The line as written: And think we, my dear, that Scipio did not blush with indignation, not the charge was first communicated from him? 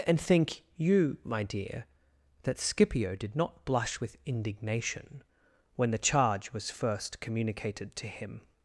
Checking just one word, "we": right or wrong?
wrong